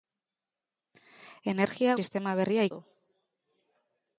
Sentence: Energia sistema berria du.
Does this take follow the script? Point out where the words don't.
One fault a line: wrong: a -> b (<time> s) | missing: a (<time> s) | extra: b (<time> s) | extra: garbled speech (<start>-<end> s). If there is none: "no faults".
no faults